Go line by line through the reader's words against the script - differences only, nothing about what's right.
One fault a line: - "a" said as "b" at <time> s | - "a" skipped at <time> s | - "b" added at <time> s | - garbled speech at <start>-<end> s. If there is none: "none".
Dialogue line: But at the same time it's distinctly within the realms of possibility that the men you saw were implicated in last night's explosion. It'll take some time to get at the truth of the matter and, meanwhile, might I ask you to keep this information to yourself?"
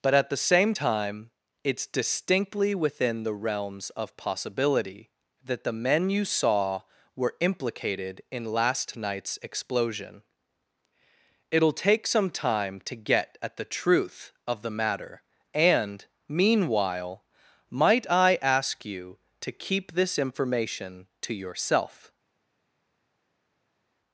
none